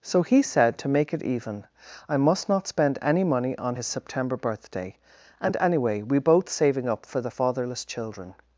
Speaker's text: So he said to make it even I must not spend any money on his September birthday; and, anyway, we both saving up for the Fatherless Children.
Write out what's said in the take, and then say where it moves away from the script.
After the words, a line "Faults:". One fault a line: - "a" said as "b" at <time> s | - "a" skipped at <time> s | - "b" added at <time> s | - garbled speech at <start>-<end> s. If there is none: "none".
So he said to make it even I must not spend any money on his September birthday; and, anyway, we both saving up for the Fatherless Children.
Faults:
none